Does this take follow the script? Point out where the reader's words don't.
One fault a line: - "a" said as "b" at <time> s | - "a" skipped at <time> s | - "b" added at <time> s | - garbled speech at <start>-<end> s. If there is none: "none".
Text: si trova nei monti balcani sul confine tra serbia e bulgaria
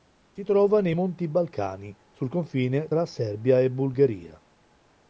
none